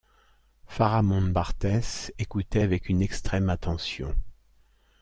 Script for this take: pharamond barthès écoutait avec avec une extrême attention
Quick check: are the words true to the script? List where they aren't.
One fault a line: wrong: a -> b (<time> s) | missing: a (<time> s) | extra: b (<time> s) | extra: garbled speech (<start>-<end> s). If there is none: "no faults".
missing: avec (2.9 s)